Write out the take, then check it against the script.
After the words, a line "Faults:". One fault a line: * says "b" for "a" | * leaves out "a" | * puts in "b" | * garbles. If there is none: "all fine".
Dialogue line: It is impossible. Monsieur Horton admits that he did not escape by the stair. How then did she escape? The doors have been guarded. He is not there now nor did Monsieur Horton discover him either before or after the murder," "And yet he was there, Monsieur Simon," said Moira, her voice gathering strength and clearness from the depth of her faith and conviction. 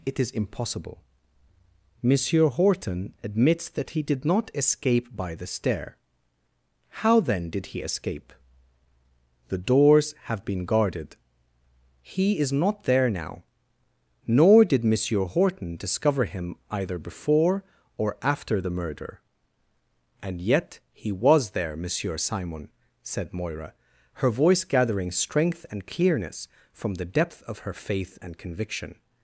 It is impossible. Monsieur Horton admits that he did not escape by the stair. How then did he escape? The doors have been guarded. He is not there now nor did Monsieur Horton discover him either before or after the murder," "And yet he was there, Monsieur Simon," said Moira, her voice gathering strength and clearness from the depth of her faith and conviction.
Faults:
* says "he" for "she"